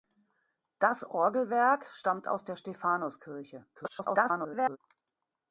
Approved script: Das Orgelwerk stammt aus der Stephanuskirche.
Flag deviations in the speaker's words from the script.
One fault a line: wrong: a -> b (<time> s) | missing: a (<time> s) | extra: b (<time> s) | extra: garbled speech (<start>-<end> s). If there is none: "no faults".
extra: garbled speech (3.7-4.8 s)